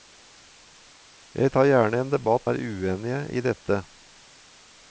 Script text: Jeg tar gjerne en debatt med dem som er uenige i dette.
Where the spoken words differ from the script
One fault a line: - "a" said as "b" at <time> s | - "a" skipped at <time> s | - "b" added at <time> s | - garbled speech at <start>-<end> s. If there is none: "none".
- "med dem som" skipped at 2.5 s